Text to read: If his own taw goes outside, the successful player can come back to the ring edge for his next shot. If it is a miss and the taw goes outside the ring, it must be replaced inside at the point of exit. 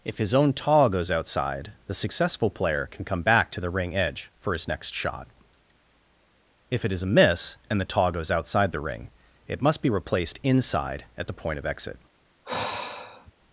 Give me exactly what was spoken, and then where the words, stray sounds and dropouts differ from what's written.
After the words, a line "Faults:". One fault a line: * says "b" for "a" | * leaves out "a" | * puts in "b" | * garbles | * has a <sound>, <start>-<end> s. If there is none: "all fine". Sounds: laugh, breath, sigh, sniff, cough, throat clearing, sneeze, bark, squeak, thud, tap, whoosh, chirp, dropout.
If his own taw goes outside, the successful player can come back to the ring edge for his next shot. If it is a miss and the taw goes outside the ring, it must be replaced inside at the point of exit.
Faults:
* has a sigh, 12.4-13.3 s